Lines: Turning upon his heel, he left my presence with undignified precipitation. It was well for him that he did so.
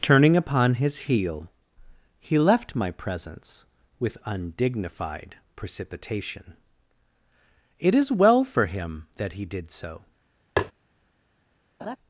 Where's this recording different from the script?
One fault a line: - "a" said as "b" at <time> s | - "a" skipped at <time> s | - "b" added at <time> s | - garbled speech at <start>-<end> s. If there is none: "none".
- "was" said as "is" at 7.9 s